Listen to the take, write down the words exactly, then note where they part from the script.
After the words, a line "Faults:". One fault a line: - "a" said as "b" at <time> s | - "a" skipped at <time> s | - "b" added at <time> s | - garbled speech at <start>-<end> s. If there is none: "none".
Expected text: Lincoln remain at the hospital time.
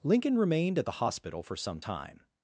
Lincoln remained at the hospital for some time.
Faults:
- "remain" said as "remained" at 0.3 s
- "for some" added at 1.4 s